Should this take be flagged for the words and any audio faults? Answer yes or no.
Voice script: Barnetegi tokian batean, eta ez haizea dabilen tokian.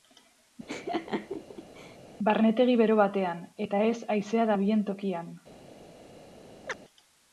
yes